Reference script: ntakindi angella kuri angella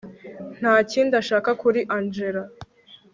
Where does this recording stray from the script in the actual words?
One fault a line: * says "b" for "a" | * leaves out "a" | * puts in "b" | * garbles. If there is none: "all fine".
* says "ashaka" for "angella"